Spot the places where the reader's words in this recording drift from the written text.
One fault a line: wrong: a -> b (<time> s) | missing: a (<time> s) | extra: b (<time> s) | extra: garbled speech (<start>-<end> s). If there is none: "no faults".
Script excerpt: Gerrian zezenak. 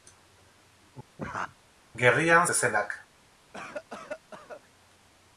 no faults